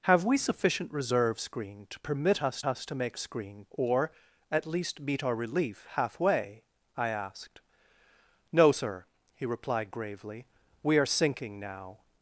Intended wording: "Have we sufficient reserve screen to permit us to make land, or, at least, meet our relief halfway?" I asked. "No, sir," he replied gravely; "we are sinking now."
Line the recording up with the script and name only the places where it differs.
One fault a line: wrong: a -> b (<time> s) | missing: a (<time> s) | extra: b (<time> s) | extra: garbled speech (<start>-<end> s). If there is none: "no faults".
extra: us (2.6 s)
wrong: land -> screen (3.2 s)